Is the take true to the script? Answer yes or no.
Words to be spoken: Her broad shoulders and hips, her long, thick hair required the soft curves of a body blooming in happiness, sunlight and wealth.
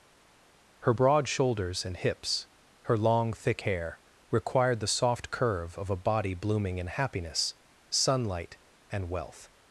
no